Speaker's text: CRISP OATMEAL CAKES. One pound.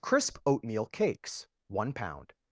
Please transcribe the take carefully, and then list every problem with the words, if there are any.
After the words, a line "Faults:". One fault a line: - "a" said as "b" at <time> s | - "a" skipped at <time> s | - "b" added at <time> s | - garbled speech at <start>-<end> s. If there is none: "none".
CRISP OATMEAL CAKES. One pound.
Faults:
none